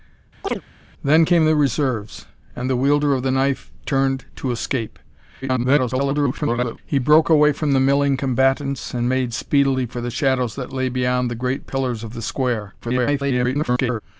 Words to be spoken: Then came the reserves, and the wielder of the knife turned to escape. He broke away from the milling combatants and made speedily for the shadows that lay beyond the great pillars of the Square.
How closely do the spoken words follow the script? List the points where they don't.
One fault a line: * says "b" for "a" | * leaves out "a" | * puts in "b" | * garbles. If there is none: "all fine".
* garbles
* garbles